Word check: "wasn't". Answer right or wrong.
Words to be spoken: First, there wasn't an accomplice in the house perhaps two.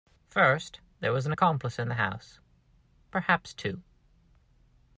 wrong